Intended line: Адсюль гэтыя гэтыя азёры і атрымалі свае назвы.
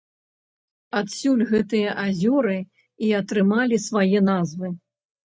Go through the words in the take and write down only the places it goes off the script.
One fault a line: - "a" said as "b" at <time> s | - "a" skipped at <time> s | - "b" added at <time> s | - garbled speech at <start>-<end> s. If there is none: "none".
- "гэтыя" skipped at 1.9 s